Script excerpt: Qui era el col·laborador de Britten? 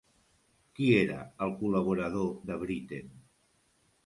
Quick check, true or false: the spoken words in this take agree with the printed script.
true